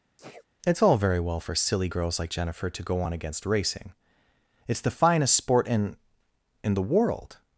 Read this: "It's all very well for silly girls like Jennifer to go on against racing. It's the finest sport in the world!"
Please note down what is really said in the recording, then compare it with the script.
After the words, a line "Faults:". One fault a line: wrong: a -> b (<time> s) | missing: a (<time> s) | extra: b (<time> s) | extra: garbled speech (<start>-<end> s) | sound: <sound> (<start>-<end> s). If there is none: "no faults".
"It's all very well for silly girls like Jennifer to go on against racing. It's the finest sport in in the world!"
Faults:
sound: sneeze (0.2-0.4 s)
extra: in (6.6 s)